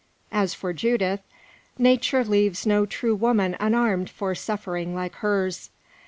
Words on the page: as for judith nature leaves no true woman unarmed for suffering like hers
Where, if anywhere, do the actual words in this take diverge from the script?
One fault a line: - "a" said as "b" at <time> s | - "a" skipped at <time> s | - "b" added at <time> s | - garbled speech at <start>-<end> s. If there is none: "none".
none